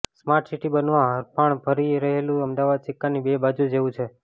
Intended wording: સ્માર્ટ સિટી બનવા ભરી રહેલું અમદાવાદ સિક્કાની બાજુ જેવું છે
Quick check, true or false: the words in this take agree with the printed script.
false